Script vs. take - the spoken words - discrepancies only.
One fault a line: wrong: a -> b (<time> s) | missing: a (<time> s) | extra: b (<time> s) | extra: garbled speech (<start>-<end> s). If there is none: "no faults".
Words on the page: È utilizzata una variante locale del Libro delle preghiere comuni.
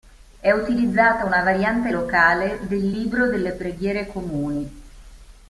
no faults